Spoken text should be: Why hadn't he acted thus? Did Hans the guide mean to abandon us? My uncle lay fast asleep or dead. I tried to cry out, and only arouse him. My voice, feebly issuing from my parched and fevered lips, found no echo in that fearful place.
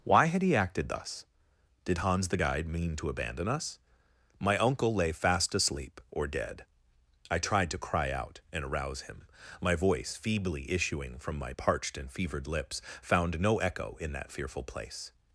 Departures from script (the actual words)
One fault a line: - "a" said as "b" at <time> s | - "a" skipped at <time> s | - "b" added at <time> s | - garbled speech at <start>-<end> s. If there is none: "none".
- "hadn't" said as "had" at 0.3 s
- "only" skipped at 8.6 s